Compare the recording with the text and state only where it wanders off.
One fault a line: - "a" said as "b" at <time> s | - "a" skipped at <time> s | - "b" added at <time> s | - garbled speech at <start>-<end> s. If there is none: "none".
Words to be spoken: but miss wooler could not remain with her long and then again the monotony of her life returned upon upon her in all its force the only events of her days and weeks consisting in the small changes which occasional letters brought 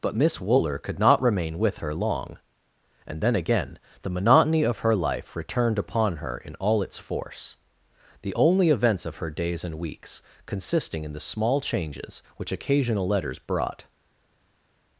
- "upon" skipped at 6.2 s